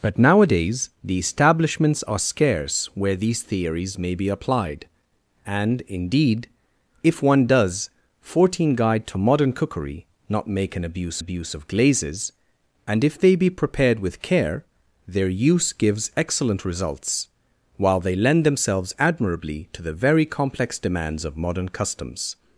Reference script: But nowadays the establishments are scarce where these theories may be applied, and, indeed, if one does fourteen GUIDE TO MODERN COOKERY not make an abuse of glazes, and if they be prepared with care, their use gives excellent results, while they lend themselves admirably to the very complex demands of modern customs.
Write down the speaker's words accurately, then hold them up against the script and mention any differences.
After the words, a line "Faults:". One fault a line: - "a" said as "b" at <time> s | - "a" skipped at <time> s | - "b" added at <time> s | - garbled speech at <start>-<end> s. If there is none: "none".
But nowadays the establishments are scarce where these theories may be applied, and, indeed, if one does fourteen GUIDE TO MODERN COOKERY not make an abuse abuse of glazes, and if they be prepared with care, their use gives excellent results, while they lend themselves admirably to the very complex demands of modern customs.
Faults:
- "abuse" added at 11.2 s